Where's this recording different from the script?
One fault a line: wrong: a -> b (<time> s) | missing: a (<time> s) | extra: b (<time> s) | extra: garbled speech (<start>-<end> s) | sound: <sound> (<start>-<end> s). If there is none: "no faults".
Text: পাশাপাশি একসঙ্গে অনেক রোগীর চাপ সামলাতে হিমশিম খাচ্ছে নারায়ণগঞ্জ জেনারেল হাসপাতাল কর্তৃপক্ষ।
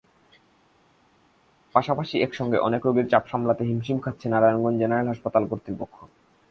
no faults